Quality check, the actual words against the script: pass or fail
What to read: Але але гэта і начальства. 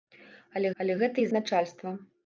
pass